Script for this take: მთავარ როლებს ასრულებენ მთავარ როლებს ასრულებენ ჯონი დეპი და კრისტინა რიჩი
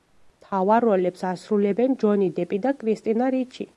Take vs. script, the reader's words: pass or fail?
fail